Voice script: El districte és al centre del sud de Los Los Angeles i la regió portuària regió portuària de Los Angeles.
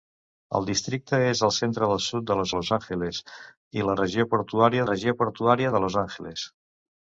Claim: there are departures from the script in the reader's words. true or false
false